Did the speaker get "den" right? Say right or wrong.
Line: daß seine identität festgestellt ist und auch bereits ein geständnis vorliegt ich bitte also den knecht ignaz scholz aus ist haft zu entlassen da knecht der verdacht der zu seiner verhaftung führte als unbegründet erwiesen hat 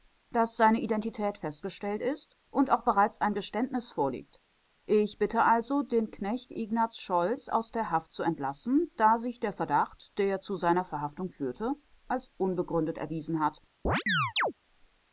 right